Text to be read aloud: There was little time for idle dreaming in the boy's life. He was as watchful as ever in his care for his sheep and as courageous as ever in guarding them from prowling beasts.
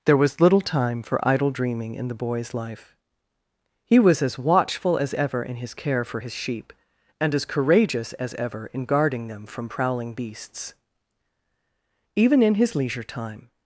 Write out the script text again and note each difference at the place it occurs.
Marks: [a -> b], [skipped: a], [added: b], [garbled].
There was little time for idle dreaming in the boy's life. He was as watchful as ever in his care for his sheep and as courageous as ever in guarding them from prowling beasts. [added: Even in his leisure time]